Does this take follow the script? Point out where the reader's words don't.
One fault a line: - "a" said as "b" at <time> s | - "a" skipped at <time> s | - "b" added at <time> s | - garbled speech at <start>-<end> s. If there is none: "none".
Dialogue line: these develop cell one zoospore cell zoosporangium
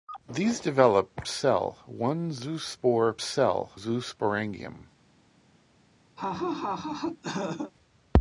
none